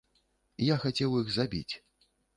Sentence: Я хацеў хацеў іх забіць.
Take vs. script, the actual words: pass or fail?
fail